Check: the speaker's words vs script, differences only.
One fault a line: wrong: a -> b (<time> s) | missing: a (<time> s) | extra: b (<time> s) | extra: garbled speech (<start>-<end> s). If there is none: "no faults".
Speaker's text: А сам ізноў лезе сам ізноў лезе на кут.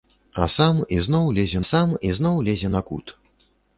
no faults